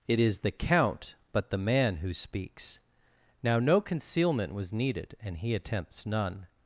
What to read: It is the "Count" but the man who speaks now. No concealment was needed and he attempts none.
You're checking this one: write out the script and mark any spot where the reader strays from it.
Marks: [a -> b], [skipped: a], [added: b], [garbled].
It is the "Count" but the man who speaks now. No concealment was needed and he attempts none.